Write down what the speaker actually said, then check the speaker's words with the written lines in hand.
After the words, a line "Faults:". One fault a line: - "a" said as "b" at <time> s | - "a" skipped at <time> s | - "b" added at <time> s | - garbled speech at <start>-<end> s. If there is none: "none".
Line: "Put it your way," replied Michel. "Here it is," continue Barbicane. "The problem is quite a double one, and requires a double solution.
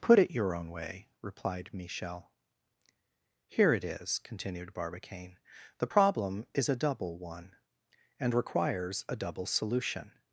"Put it your own way," replied Michel. "Here it is," continued Barbicane. "The problem is a double one, and requires a double solution.
Faults:
- "own" added at 0.5 s
- "continue" said as "continued" at 4.2 s
- "quite" skipped at 6.7 s